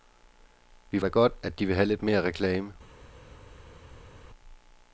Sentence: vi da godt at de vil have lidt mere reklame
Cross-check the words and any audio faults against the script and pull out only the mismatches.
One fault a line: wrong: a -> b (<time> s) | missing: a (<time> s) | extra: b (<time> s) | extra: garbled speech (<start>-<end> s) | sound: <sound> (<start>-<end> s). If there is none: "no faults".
no faults